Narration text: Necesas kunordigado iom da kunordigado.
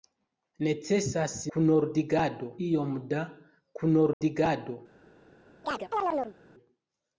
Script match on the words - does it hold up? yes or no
yes